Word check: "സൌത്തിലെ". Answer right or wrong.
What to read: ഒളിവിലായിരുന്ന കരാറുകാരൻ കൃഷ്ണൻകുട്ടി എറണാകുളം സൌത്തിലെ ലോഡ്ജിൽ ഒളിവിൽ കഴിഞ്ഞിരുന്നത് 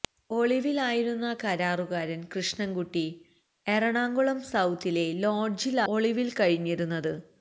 right